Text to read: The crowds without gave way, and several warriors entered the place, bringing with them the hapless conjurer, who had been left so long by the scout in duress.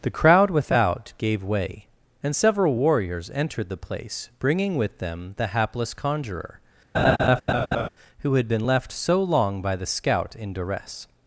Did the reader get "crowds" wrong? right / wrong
wrong